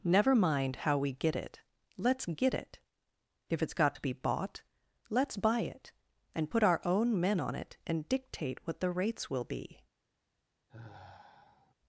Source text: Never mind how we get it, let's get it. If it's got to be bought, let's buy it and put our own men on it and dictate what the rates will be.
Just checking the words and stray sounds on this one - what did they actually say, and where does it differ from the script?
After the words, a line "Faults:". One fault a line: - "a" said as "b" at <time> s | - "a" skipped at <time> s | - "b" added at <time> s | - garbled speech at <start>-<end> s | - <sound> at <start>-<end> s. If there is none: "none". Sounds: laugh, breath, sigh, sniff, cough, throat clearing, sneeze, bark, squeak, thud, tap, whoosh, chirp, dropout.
Never mind how we get it, let's get it. If it's got to be bought, let's buy it and put our own men on it and dictate what the rates will be.
Faults:
- sigh at 10.7-11.7 s